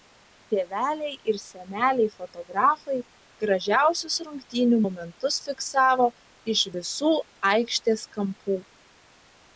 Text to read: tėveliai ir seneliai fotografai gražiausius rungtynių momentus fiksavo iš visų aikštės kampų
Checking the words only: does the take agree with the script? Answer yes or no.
yes